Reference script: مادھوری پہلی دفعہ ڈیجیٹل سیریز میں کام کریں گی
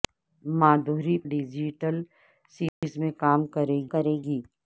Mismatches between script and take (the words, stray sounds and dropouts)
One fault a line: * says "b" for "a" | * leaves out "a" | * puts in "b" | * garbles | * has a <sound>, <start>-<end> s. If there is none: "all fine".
* leaves out "پہلی دفعہ"
* has a dropout, 2.7-2.8 s
* puts in "کریں"